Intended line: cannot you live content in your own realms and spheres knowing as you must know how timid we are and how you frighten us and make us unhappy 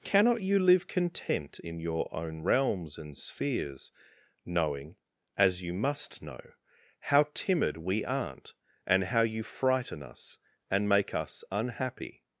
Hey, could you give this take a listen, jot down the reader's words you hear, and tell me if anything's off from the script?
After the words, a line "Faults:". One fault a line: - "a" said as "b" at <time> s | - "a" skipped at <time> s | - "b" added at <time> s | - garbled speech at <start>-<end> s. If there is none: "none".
cannot you live content in your own realms and spheres knowing as you must know how timid we aren't and how you frighten us and make us unhappy
Faults:
- "are" said as "aren't" at 8.0 s